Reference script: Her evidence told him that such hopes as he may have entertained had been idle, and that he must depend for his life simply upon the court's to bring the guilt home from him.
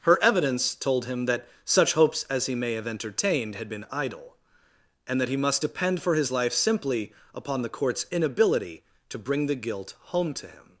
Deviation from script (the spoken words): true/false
true